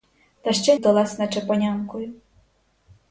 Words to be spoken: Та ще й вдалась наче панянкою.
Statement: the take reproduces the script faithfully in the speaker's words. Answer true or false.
true